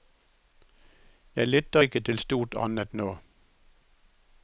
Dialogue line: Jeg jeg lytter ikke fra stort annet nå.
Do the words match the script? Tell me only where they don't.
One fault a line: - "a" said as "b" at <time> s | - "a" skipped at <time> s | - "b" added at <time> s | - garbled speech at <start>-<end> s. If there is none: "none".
- "jeg" skipped at 1.5 s
- "fra" said as "til" at 2.0 s